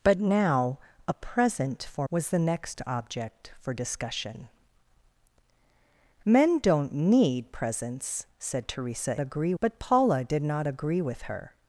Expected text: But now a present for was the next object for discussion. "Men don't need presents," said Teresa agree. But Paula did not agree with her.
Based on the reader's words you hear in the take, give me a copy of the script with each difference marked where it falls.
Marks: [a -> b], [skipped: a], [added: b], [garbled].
But now a present for was the next object for discussion. "Men don't need presents," said Teresa agree. But Paula did not agree with her.